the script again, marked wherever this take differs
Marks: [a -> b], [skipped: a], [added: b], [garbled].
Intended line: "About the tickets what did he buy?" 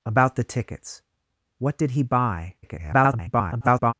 "About the tickets what did he buy?" [garbled]